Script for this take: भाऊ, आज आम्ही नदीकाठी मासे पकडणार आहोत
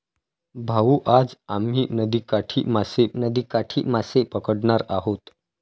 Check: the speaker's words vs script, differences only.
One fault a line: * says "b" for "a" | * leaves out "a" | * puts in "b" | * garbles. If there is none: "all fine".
* puts in "नदीकाठी मासे"